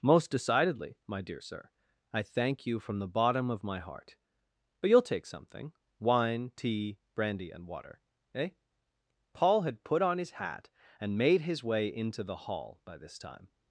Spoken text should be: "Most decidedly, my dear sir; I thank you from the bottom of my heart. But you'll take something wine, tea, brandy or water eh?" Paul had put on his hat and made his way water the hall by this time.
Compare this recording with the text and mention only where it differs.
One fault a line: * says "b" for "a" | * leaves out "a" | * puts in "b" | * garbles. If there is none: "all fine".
* says "and" for "or"
* says "into" for "water"